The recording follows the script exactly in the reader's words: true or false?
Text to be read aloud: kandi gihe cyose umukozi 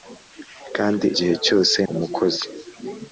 true